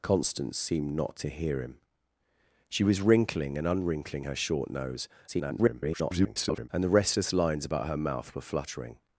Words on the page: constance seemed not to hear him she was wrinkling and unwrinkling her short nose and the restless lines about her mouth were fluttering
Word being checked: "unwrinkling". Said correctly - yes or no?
yes